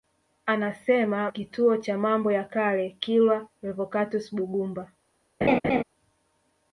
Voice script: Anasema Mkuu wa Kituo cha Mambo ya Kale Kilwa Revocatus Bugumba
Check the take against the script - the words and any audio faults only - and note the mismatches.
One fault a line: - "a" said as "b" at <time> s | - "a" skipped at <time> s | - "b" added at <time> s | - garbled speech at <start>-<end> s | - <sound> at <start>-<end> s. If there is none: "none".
- "Mkuu wa" skipped at 1.3 s
- laugh at 5.4-5.8 s